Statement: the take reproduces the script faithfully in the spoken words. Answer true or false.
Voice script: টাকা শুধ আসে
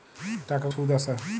true